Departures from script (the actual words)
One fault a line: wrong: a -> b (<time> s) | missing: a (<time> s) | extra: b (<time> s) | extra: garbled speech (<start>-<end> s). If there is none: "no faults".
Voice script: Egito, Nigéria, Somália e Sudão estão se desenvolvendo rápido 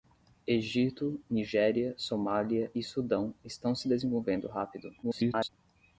extra: garbled speech (5.0-5.5 s)